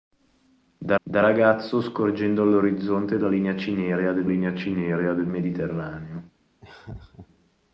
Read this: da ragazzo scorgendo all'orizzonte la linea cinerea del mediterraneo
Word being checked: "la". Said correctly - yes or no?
yes